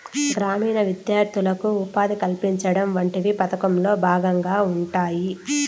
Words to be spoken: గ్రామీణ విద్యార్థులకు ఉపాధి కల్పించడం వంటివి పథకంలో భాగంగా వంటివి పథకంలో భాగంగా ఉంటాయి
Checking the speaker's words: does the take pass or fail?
fail